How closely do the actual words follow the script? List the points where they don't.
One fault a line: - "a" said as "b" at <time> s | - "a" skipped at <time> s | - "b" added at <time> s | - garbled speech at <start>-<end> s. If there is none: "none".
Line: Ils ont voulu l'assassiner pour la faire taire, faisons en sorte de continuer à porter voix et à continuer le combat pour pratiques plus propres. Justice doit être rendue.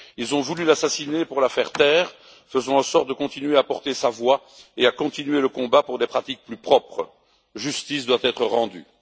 - "sa" added at 3.9 s
- "des" added at 6.0 s